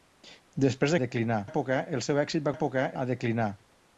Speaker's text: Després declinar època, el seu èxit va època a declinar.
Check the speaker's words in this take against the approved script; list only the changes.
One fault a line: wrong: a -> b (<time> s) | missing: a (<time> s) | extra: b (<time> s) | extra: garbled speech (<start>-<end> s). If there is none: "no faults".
no faults